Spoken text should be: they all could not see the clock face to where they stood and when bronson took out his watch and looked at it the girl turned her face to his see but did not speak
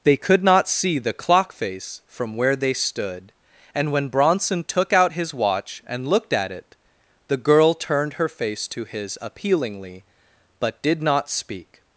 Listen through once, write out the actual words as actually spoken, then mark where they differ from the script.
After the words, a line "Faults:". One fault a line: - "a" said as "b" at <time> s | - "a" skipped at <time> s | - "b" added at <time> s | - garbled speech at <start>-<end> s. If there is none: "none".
they could not see the clock face from where they stood and when bronson took out his watch and looked at it the girl turned her face to his appealingly but did not speak
Faults:
- "all" skipped at 0.2 s
- "to" said as "from" at 2.1 s
- "see" said as "appealingly" at 9.2 s